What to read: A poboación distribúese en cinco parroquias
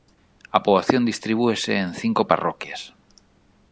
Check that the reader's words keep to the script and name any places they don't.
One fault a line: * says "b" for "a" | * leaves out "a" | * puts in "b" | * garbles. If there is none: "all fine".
all fine